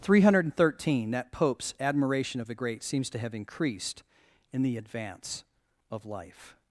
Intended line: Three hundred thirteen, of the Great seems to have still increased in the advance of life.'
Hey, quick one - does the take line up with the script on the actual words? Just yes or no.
no